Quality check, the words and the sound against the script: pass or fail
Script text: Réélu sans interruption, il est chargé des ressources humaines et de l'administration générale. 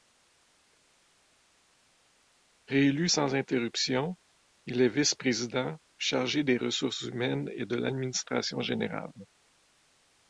fail